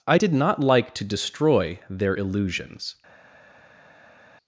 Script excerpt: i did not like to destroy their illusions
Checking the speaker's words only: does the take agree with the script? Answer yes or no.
yes